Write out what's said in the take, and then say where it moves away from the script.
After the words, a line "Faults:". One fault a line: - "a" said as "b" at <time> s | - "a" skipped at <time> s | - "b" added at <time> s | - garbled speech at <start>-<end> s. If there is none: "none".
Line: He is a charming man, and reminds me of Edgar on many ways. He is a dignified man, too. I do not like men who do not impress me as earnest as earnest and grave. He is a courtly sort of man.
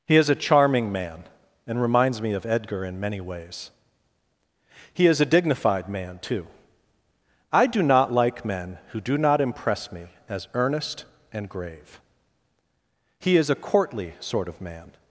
He is a charming man, and reminds me of Edgar in many ways. He is a dignified man, too. I do not like men who do not impress me as earnest and grave. He is a courtly sort of man.
Faults:
- "on" said as "in" at 2.8 s
- "as earnest" skipped at 11.1 s